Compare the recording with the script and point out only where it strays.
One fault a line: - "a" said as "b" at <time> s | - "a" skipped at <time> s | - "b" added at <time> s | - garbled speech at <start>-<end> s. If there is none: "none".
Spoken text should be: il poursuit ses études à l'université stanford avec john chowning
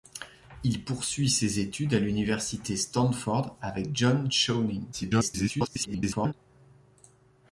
- garbled speech at 4.9-6.3 s